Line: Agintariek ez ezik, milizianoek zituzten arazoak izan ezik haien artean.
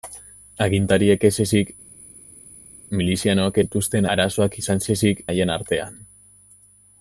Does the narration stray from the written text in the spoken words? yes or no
no